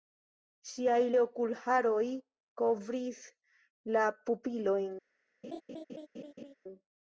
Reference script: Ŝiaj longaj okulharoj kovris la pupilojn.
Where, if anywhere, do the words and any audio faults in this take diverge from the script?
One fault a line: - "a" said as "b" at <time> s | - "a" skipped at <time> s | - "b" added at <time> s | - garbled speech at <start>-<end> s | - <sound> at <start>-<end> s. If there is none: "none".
- "longaj" skipped at 1.0 s
- laugh at 5.4-6.5 s